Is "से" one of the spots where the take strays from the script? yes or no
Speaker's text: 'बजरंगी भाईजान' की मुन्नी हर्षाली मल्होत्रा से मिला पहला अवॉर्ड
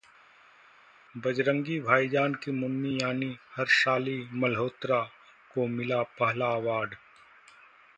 yes